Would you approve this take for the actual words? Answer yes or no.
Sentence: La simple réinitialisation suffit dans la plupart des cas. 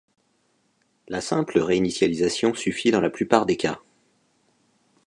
yes